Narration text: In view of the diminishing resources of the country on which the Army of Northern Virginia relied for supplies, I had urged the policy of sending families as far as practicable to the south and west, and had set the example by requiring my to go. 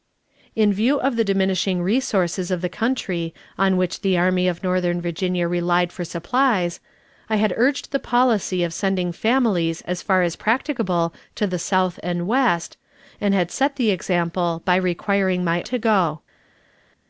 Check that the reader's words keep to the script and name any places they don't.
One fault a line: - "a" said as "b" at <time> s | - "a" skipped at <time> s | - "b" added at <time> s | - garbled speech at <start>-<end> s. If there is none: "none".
none